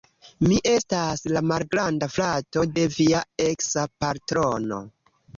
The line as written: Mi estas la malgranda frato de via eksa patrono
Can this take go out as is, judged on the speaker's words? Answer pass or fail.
pass